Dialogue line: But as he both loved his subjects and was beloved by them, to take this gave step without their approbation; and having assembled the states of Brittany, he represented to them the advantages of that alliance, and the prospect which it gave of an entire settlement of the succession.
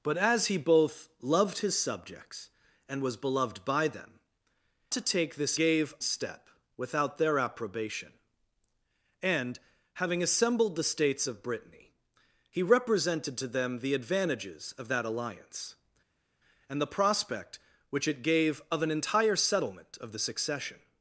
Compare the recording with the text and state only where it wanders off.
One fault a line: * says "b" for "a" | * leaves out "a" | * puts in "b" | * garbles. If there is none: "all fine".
all fine